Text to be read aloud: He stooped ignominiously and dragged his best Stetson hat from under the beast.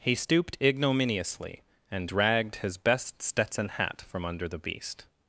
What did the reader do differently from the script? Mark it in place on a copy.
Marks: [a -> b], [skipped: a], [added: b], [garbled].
He stooped ignominiously and dragged his best Stetson hat from under the beast.